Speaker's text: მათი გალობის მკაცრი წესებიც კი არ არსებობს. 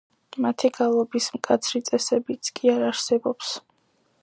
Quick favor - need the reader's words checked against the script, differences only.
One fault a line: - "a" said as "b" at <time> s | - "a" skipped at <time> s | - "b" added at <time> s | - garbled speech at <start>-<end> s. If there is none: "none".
none